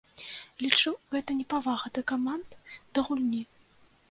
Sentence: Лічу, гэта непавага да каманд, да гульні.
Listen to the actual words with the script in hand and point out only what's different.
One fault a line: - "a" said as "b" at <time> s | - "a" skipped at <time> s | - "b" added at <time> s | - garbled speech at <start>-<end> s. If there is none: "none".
none